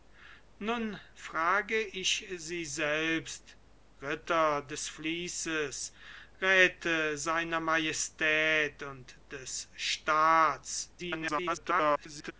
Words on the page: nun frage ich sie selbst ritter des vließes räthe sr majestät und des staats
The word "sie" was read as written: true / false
true